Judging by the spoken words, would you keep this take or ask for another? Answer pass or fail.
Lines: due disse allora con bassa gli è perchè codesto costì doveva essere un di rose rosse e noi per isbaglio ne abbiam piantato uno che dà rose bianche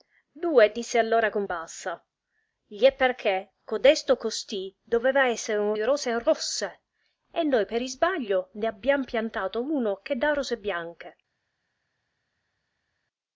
pass